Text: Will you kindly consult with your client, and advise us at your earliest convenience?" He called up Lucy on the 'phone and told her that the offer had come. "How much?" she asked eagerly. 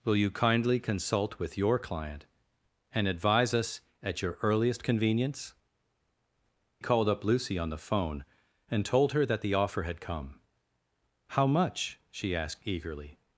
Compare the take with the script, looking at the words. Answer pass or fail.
fail